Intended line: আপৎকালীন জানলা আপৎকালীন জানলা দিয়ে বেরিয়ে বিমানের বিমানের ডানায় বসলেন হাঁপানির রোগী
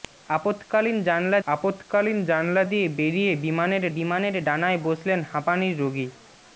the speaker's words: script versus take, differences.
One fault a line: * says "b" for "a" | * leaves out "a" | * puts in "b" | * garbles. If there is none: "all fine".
all fine